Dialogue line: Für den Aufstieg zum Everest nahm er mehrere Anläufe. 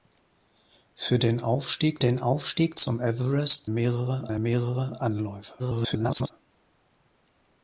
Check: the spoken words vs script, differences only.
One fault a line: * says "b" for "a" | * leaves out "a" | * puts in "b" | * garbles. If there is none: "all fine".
* puts in "den Aufstieg"
* says "mehrere" for "nahm"
* garbles